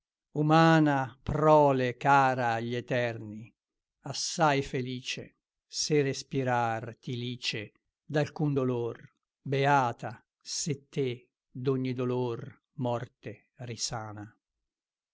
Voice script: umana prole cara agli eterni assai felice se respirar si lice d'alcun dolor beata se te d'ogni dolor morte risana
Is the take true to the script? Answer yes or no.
no